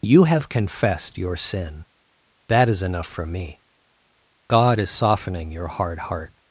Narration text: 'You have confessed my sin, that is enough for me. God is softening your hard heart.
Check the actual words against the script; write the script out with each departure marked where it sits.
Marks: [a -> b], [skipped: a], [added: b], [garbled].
'You have confessed [my -> your] sin, that is enough for me. God is softening your hard heart.